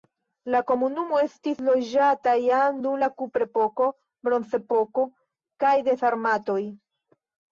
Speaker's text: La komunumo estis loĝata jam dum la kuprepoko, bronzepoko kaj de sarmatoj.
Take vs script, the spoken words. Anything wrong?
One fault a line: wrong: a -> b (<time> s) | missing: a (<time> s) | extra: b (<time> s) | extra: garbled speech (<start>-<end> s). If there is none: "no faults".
no faults